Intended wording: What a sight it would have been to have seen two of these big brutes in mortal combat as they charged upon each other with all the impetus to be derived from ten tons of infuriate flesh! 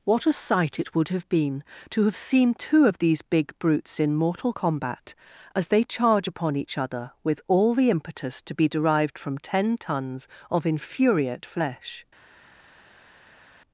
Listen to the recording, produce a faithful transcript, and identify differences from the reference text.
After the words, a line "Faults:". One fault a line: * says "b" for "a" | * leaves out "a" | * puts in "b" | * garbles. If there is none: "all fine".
What a sight it would have been to have seen two of these big brutes in mortal combat as they charge upon each other with all the impetus to be derived from ten tons of infuriate flesh!
Faults:
* says "charge" for "charged"